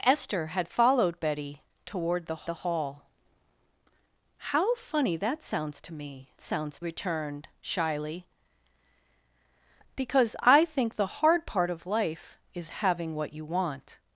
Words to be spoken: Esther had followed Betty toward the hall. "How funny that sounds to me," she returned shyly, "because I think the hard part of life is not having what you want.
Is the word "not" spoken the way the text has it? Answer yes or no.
no